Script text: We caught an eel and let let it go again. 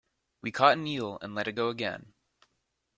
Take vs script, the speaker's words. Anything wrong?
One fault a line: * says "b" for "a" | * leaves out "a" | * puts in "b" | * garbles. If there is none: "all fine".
* leaves out "let"